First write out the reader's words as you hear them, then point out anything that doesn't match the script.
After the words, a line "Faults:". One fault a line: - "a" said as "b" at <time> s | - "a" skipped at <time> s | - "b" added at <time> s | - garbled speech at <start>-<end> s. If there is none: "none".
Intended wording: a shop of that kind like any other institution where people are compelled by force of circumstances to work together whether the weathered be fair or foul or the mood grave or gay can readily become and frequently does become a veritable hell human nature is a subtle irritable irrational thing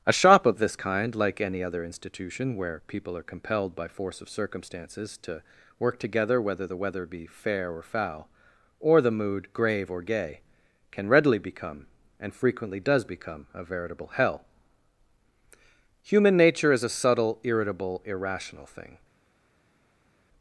a shop of this kind like any other institution where people are compelled by force of circumstances to work together whether the weather be fair or foul or the mood grave or gay can readily become and frequently does become a veritable hell human nature is a subtle irritable irrational thing
Faults:
- "that" said as "this" at 0.6 s
- "weathered" said as "weather" at 6.8 s